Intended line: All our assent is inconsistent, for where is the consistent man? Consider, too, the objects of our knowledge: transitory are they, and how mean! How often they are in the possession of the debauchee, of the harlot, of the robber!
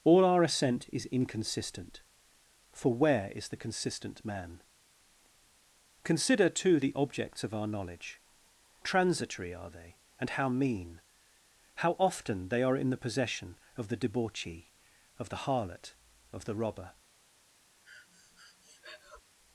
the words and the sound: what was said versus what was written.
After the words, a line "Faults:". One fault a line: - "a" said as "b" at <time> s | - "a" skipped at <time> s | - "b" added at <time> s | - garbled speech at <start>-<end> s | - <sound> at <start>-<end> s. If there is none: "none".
All our assent is inconsistent, for where is the consistent man? Consider, too, the objects of our knowledge: transitory are they, and how mean! How often they are in the possession of the debauchee, of the harlot, of the robber!
Faults:
- breath at 17.8-19.2 s